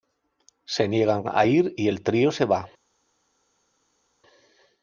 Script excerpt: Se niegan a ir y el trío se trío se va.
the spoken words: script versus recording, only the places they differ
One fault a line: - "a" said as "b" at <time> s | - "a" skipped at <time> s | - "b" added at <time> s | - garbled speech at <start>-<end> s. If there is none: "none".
- "trío se" skipped at 2.4 s